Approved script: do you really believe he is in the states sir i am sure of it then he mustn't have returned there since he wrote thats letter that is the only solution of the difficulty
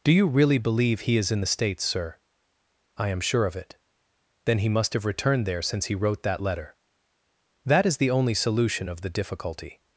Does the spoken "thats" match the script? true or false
false